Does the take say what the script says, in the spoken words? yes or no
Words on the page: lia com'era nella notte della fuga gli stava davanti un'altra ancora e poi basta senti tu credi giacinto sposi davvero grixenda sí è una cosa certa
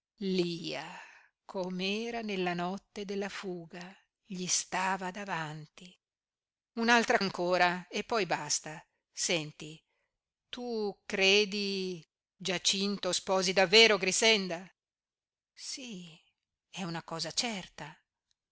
yes